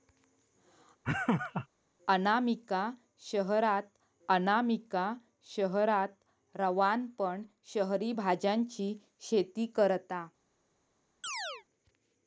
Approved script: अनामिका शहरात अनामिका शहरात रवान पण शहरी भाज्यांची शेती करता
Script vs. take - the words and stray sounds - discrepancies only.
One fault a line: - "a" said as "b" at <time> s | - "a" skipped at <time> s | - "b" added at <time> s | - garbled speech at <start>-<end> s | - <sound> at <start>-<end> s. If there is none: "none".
- laugh at 1.0-1.7 s
- chirp at 11.2-11.6 s